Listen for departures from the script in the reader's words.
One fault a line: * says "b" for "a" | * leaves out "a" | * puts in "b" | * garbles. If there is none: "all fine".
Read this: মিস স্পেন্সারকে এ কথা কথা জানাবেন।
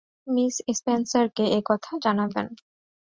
* leaves out "কথা"